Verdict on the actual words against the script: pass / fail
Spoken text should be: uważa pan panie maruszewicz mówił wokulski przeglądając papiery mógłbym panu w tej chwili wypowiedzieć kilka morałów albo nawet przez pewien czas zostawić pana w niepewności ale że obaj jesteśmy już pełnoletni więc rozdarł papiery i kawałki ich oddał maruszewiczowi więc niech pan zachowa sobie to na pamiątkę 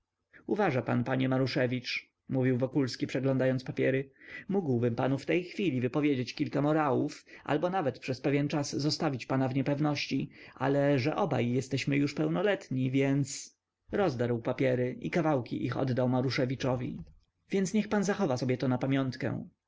pass